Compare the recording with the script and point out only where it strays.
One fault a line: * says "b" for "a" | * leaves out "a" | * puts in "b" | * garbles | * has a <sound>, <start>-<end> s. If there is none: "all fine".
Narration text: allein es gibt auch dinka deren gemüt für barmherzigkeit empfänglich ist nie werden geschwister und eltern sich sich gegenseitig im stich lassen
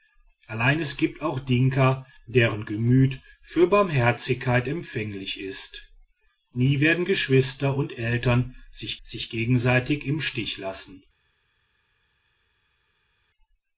all fine